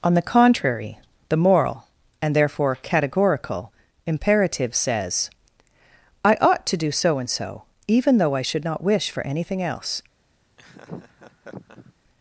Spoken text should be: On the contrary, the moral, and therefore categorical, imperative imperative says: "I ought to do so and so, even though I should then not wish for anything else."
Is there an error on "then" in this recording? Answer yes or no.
yes